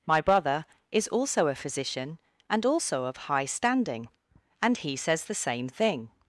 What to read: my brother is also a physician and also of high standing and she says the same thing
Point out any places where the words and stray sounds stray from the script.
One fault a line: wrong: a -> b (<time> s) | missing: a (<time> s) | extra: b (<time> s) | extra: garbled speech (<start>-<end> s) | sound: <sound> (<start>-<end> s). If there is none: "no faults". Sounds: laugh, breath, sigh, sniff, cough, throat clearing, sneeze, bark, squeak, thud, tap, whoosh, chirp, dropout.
wrong: she -> he (4.8 s)